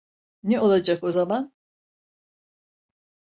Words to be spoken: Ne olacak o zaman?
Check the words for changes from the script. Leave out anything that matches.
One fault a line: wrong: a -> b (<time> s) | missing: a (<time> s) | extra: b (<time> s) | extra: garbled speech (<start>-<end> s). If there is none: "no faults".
no faults